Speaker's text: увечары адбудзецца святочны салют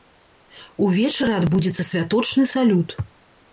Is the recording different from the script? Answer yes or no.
no